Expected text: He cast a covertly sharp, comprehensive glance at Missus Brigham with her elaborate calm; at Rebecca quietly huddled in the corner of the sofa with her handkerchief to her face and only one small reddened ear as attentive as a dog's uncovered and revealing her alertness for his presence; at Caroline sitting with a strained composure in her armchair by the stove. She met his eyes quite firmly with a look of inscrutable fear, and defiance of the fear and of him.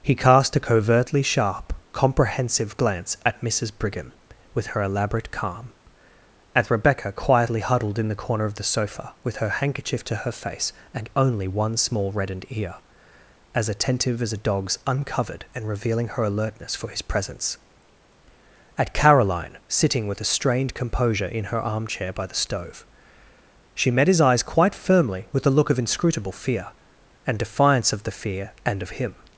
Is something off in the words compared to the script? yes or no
no